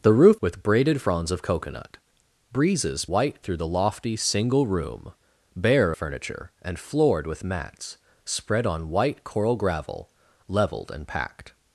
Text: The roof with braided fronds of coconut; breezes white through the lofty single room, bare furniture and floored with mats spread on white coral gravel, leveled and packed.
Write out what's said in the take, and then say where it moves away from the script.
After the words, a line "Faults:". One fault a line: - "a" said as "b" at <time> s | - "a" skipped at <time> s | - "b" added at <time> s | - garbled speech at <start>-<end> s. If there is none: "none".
The roof with braided fronds of coconut; breezes white through the lofty single room, bare furniture and floored with mats spread on white coral gravel, leveled and packed.
Faults:
none